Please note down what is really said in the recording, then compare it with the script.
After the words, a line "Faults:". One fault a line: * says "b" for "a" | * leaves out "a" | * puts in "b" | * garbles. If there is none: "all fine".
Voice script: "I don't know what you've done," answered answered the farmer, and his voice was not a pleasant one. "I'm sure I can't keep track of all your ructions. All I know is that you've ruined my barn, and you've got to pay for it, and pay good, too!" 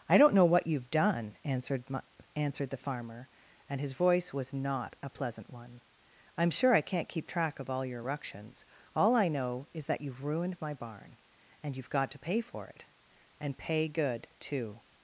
"I don't know what you've done," answered answered the farmer, and his voice was not a pleasant one. "I'm sure I can't keep track of all your ructions. All I know is that you've ruined my barn, and you've got to pay for it, and pay good, too!"
Faults:
all fine